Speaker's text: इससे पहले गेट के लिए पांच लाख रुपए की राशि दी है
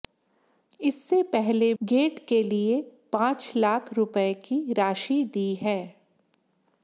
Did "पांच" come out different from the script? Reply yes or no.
no